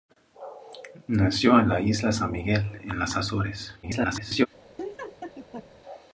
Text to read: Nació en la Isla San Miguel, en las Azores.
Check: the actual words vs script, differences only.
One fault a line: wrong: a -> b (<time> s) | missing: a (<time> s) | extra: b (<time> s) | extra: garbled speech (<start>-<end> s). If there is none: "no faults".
extra: garbled speech (3.8-4.5 s)